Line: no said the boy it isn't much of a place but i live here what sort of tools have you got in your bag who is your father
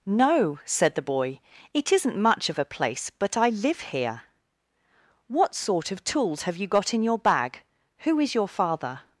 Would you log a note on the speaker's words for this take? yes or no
no